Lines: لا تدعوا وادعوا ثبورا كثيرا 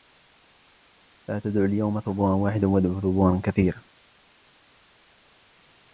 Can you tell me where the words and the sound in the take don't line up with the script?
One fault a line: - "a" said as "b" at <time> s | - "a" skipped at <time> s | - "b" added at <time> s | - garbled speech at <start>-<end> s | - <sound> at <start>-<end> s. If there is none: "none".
- "اليوم ثبورا واحدا" added at 1.6 s